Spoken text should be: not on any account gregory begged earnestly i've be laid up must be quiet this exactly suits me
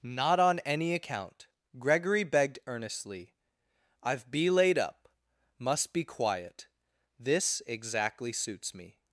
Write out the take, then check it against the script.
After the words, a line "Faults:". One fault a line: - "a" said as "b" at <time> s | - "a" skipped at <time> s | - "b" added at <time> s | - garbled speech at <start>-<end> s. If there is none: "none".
not on any account gregory begged earnestly i've be laid up must be quiet this exactly suits me
Faults:
none